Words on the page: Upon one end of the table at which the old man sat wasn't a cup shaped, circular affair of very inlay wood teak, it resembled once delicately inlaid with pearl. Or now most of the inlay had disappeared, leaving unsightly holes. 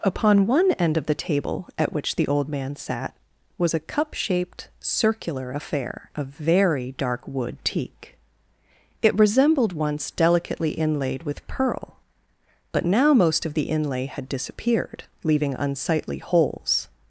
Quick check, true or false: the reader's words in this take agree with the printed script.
false